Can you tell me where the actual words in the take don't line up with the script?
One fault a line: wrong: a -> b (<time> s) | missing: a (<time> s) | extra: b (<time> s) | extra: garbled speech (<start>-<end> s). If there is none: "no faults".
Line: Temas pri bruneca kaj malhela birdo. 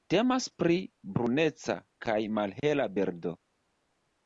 no faults